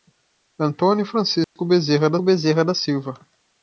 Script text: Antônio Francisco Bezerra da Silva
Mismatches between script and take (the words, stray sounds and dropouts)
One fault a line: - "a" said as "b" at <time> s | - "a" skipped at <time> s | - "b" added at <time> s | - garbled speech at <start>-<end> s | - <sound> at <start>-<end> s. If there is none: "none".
- dropout at 1.4-1.6 s
- "Bezerra da" added at 2.2 s